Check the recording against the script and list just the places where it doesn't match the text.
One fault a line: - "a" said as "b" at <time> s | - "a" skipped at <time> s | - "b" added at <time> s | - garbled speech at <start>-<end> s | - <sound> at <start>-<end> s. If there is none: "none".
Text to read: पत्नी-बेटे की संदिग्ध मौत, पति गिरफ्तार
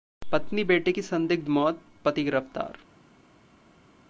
none